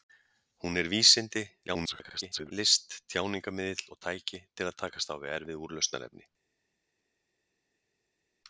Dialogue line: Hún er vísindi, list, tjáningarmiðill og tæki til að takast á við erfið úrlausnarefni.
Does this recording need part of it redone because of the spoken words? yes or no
yes